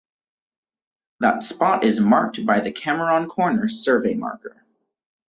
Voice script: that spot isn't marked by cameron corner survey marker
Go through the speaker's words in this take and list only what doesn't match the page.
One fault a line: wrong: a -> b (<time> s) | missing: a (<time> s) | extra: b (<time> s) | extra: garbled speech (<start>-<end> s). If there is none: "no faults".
wrong: isn't -> is (1.8 s)
extra: the (2.6 s)